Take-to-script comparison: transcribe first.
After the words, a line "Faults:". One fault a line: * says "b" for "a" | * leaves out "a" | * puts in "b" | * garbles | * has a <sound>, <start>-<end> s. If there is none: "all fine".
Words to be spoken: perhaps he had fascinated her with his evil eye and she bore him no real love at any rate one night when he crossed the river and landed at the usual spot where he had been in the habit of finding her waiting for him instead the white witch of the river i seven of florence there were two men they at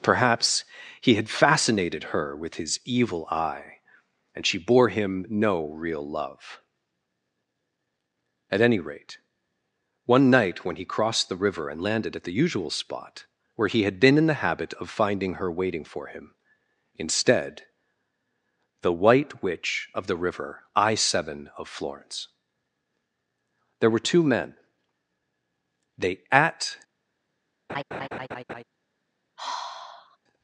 perhaps he had fascinated her with his evil eye and she bore him no real love at any rate one night when he crossed the river and landed at the usual spot where he had been in the habit of finding her waiting for him instead the white witch of the river i seven of florence there were two men they at
Faults:
* has a laugh, 27.7-28.6 s
* has a sigh, 29.4-30.2 s